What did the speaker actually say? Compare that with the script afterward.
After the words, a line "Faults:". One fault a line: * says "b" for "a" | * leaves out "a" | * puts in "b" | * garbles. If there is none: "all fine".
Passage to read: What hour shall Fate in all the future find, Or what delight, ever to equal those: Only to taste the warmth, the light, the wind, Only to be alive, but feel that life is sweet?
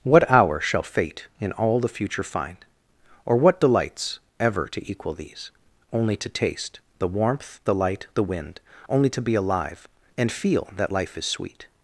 What hour shall Fate in all the future find, Or what delights, ever to equal these: Only to taste the warmth, the light, the wind, Only to be alive, and feel that life is sweet?
Faults:
* says "delights" for "delight"
* says "these" for "those"
* says "and" for "but"